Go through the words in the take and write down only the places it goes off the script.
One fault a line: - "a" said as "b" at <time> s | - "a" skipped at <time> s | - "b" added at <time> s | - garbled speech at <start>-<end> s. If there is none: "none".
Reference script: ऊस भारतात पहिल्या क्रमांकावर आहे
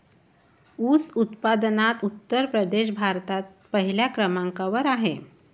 - "उत्पादनात उत्तर प्रदेश" added at 1.1 s